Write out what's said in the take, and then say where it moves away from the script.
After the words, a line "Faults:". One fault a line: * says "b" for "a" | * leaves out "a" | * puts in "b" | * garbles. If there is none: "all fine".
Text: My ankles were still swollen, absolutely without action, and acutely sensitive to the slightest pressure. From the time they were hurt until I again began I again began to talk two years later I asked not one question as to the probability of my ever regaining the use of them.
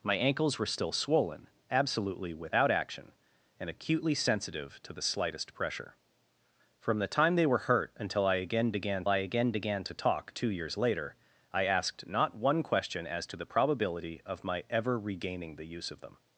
My ankles were still swollen, absolutely without action, and acutely sensitive to the slightest pressure. From the time they were hurt until I again began I again began to talk two years later I asked not one question as to the probability of my ever regaining the use of them.
Faults:
all fine